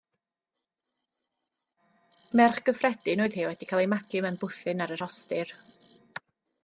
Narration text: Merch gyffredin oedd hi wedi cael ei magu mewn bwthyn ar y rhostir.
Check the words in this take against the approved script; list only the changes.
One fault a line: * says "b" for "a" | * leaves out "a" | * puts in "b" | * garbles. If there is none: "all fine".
all fine